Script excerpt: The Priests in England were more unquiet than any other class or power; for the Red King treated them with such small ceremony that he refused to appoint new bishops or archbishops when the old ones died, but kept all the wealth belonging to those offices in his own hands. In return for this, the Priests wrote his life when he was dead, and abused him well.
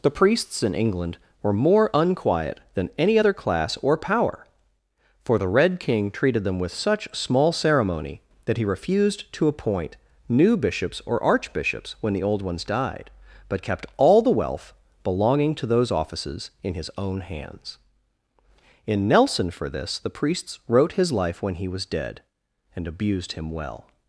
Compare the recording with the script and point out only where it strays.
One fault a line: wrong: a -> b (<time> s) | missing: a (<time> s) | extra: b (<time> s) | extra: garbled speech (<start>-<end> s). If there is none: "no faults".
wrong: return -> nelson (19.1 s)